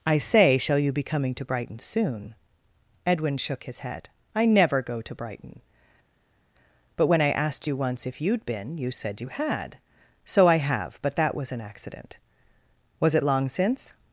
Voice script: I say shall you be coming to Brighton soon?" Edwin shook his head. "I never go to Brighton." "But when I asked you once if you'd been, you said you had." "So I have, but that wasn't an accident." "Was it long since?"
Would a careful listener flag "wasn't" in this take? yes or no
yes